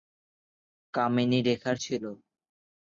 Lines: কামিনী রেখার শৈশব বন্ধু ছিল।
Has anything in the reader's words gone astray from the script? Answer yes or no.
yes